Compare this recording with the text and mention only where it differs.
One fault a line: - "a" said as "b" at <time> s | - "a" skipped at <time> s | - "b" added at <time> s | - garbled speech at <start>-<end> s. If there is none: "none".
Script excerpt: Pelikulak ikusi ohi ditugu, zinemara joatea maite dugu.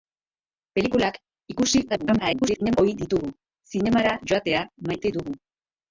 - garbled speech at 1.9-2.8 s